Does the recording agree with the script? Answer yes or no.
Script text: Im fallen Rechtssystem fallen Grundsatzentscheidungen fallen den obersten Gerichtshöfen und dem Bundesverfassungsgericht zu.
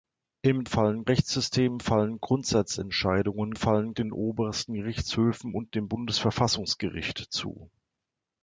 yes